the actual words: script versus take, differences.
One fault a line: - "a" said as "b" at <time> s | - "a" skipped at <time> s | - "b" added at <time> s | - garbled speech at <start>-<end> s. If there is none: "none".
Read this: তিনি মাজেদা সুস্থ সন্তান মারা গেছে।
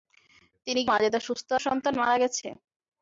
none